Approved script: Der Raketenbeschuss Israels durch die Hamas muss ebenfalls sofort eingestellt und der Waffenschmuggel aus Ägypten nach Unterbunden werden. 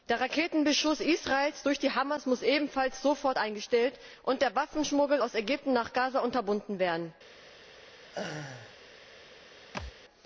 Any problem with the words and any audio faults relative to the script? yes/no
yes